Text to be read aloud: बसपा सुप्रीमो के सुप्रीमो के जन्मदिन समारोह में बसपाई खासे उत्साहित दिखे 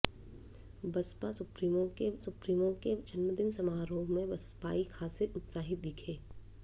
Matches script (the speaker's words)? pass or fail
pass